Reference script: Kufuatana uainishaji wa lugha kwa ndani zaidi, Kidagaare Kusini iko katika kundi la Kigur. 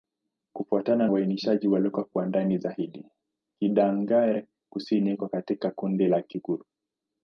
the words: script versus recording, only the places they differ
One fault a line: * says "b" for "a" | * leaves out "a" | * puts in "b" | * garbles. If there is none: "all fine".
all fine